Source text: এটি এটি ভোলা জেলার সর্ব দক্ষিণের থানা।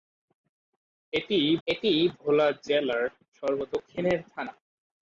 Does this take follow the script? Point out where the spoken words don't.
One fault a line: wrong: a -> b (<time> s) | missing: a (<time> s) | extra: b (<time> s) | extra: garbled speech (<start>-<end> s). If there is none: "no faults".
no faults